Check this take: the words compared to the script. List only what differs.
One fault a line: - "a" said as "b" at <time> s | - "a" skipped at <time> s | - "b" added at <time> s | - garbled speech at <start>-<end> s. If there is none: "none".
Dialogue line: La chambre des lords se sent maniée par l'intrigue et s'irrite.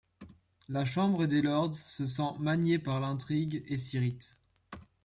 none